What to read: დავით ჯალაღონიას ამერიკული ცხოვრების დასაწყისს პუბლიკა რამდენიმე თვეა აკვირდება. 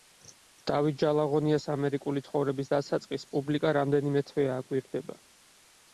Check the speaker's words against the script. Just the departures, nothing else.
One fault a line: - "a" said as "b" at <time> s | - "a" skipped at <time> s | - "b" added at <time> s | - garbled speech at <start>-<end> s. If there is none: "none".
none